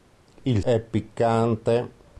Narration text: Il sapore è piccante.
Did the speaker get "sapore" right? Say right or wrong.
wrong